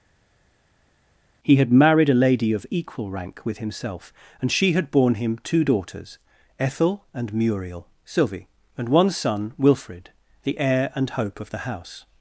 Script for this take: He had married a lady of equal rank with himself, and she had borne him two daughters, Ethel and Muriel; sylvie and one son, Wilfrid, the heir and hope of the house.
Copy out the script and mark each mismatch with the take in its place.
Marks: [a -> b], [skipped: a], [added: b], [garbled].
He had married a lady of equal rank with himself, and she had borne him two daughters, Ethel and Muriel; sylvie and one son, Wilfrid, the heir and hope of the house.